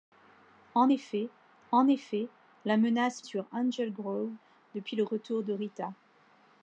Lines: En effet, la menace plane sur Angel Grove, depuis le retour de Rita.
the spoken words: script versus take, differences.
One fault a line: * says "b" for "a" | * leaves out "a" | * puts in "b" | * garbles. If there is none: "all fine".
* puts in "en effet"
* leaves out "plane"